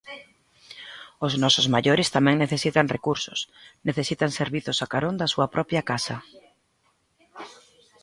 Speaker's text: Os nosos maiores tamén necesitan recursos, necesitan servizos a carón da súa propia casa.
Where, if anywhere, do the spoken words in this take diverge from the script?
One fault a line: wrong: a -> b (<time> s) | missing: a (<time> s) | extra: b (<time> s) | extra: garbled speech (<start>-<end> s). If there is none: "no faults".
no faults